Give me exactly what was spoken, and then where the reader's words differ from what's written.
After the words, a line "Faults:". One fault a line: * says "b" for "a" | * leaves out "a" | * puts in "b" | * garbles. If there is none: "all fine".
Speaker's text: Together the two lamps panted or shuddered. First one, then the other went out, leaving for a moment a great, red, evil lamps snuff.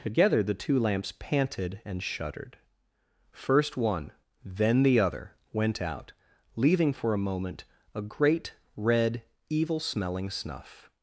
Together the two lamps panted and shuddered. First one, then the other went out, leaving for a moment a great, red, evil smelling snuff.
Faults:
* says "and" for "or"
* says "smelling" for "lamps"